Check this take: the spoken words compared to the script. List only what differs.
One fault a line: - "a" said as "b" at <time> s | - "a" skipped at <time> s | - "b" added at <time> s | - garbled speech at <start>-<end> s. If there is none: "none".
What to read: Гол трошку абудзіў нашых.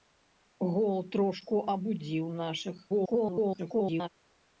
- garbled speech at 2.9-4.1 s